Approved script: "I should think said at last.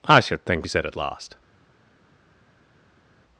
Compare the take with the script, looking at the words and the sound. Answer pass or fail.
pass